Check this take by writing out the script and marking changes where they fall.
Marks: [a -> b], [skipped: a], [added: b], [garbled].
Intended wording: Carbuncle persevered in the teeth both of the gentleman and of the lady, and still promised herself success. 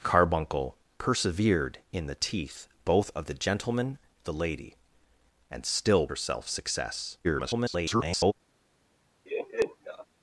Carbuncle persevered in the teeth both of the gentleman [skipped: and of] the lady, and still [skipped: promised] herself success. [garbled]